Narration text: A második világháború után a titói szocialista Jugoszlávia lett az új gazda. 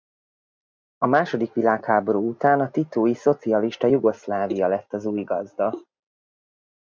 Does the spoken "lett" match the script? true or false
true